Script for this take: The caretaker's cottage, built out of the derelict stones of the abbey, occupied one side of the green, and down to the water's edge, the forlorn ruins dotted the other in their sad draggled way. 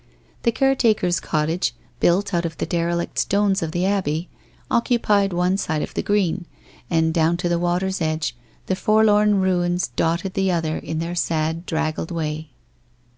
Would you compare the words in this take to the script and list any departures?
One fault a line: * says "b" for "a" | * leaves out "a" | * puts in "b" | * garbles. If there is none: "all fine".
all fine